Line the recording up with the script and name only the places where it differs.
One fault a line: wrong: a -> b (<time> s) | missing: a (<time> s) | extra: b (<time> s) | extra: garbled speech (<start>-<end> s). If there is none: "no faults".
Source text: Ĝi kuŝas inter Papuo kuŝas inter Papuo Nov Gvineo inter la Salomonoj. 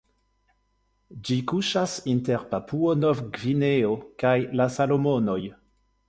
missing: kuŝas inter Papuo (3.0 s)
wrong: inter -> kaj (4.3 s)